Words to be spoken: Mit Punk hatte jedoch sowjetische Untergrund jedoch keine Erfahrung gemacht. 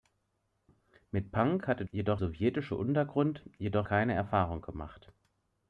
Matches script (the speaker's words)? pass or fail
pass